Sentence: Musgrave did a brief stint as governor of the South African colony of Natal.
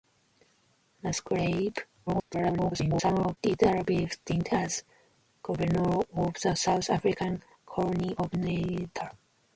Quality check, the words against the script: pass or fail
fail